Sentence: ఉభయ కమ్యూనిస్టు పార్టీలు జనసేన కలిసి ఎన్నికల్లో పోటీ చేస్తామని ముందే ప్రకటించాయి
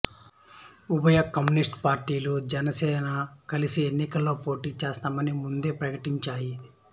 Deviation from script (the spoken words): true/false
false